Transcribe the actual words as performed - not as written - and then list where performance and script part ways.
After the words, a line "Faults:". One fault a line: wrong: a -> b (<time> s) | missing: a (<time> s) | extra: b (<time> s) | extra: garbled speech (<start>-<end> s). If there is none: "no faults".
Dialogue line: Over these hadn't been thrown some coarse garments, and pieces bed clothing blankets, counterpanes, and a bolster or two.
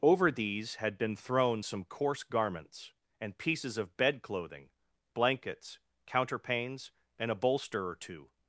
Over these had been thrown some coarse garments, and pieces of bed clothing blankets, counterpanes, and a bolster or two.
Faults:
wrong: hadn't -> had (0.8 s)
extra: of (3.8 s)